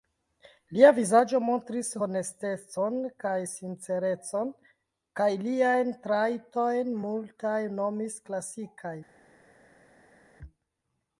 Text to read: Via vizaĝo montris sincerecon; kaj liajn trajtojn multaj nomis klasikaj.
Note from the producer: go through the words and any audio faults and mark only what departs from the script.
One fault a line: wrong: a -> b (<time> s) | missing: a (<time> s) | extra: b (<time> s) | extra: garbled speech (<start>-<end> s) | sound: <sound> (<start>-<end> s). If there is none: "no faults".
wrong: Via -> Lia (0.8 s)
extra: honestecon kaj (2.0 s)